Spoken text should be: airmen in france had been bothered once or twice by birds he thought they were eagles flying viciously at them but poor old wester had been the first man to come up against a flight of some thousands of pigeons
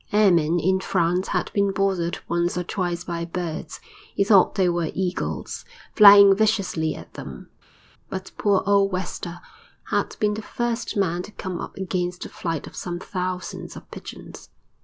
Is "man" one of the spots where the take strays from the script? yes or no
no